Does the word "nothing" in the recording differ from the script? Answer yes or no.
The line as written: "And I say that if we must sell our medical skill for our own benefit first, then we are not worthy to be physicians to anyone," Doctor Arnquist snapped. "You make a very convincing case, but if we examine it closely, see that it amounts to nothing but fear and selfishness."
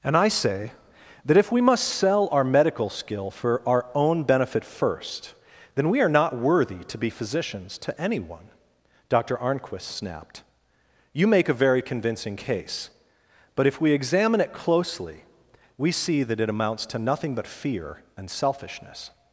no